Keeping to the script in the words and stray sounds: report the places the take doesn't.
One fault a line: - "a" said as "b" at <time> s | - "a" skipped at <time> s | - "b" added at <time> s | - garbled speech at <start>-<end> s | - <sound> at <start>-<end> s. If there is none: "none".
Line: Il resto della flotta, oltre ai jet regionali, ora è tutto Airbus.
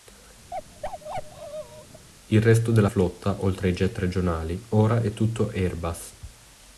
- bark at 0.5-2.1 s